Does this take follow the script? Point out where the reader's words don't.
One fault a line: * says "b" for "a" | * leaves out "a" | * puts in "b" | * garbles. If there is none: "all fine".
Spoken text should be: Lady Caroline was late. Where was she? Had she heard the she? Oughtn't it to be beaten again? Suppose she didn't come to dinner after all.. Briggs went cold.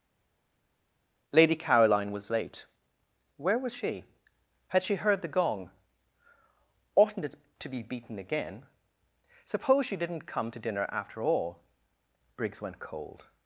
* says "gong" for "she"